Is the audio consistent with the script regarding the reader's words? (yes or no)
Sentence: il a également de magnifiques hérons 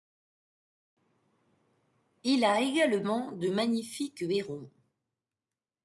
yes